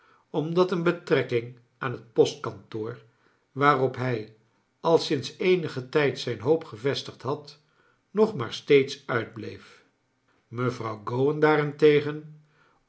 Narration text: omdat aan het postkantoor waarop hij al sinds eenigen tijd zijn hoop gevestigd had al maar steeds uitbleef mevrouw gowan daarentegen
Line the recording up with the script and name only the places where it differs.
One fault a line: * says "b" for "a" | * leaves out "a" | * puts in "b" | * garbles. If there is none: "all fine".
* puts in "een betrekking"
* says "nog" for "al"